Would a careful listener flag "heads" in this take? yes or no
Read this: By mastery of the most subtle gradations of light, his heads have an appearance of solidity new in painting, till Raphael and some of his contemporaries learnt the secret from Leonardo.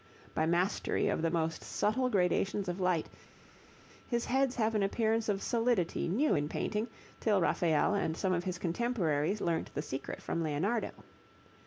no